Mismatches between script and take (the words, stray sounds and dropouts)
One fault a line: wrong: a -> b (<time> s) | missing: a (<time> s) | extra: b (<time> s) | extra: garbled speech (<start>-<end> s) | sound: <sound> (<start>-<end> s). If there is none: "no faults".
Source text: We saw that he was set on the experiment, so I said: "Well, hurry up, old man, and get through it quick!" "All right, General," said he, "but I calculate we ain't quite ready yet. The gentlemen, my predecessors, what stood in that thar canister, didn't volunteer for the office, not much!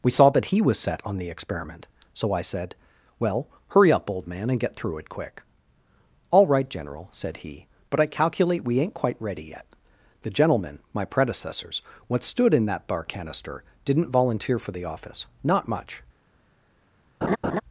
wrong: thar -> bar (12.9 s)
sound: laugh (17.2-17.6 s)